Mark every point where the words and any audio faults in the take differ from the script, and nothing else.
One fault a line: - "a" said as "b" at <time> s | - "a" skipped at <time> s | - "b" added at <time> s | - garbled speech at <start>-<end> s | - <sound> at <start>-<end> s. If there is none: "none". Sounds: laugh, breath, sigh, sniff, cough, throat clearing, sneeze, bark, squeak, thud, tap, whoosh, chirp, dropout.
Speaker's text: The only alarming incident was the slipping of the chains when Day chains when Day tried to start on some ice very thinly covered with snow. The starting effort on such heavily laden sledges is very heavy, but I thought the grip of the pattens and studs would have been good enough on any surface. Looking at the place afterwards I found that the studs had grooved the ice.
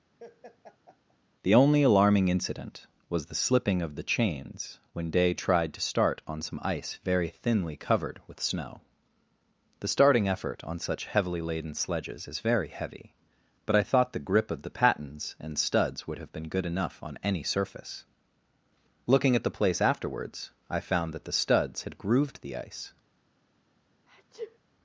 - laugh at 0.2-1.2 s
- "chains when Day" skipped at 5.3 s
- sneeze at 24.1-24.6 s